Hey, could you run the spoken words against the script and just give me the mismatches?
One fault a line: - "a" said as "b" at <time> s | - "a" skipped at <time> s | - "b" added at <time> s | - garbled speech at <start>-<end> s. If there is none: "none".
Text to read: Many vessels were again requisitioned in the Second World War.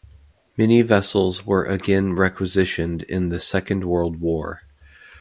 none